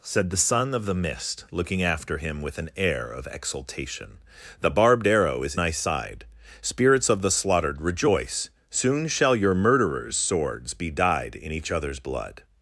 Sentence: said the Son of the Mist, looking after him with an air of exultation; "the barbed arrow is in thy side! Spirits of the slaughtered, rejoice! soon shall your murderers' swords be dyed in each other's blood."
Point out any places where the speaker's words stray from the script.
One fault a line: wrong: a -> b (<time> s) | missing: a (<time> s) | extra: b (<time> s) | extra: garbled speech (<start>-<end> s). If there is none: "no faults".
missing: in (5.5 s)